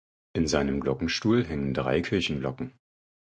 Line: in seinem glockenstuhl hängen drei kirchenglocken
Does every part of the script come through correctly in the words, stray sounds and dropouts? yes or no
yes